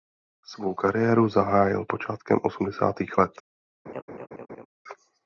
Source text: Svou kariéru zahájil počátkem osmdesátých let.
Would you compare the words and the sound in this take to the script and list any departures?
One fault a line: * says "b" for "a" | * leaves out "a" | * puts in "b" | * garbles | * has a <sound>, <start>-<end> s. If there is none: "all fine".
* has a laugh, 3.9-4.7 s